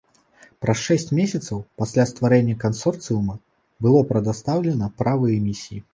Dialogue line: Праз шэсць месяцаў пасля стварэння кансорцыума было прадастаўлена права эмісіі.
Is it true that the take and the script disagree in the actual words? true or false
false